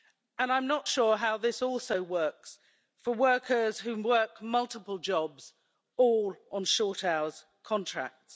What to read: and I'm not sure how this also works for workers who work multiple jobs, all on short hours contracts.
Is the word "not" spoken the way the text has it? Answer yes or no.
yes